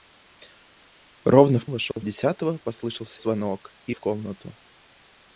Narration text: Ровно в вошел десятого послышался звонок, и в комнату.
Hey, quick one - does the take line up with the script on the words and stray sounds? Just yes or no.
no